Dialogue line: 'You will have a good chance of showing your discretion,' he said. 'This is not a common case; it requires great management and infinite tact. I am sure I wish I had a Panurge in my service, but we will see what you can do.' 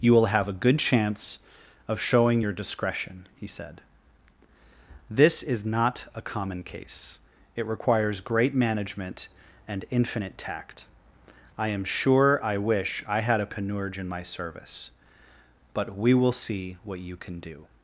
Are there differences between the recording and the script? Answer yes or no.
no